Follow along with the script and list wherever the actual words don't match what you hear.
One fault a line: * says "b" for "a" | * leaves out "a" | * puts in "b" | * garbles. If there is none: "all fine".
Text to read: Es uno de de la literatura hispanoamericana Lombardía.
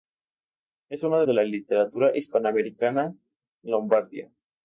all fine